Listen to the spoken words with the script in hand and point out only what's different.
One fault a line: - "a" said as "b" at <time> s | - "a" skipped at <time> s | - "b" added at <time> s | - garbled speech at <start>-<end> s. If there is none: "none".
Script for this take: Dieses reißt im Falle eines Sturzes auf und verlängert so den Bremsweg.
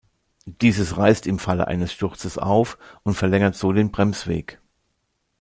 none